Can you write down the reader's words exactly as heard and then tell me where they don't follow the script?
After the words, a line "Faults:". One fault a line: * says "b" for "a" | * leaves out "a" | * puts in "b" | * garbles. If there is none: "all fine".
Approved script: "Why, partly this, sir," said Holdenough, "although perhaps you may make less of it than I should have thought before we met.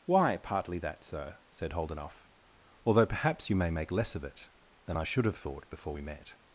"Why, partly that, sir," said Holdenough, "although perhaps you may make less of it than I should have thought before we met.
Faults:
* says "that" for "this"